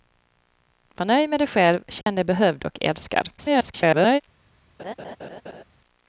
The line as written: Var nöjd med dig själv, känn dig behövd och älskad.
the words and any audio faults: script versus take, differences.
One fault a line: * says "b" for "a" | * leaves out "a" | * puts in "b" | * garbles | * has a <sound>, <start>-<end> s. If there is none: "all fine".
* has a dropout, 2.0-2.1 s
* garbles
* has a laugh, 4.8-5.6 s